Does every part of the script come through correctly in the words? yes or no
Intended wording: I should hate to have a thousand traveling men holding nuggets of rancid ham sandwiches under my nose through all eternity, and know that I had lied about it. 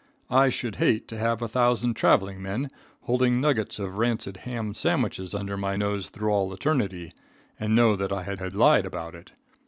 no